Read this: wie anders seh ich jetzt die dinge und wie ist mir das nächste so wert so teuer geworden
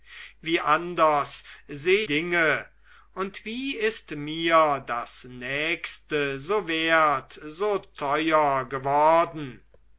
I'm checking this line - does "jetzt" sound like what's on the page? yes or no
no